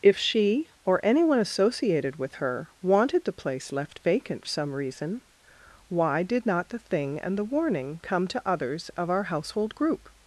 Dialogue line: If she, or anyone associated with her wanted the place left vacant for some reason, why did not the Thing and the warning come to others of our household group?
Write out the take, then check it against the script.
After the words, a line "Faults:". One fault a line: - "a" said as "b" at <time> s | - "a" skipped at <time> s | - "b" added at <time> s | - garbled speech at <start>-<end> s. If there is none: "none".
If she, or anyone associated with her wanted the place left vacant some reason, why did not the Thing and the warning come to others of our household group?
Faults:
- "for" skipped at 4.5 s